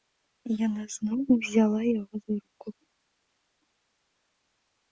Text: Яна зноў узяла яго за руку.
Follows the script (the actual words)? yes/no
yes